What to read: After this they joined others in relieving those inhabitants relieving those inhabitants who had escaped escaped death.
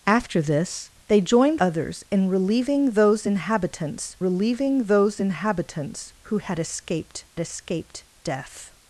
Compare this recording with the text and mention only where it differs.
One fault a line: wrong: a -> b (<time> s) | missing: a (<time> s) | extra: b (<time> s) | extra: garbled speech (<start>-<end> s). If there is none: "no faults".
no faults